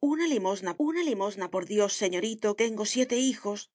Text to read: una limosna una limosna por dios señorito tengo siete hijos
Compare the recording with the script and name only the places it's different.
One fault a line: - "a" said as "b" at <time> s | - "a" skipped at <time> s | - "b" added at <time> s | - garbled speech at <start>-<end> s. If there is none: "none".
none